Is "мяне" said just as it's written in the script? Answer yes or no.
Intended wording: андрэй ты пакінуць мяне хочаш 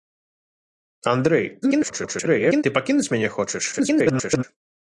yes